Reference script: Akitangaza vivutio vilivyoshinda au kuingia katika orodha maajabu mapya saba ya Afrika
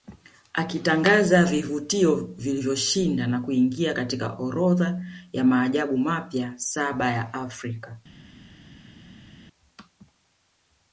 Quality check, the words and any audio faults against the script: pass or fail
fail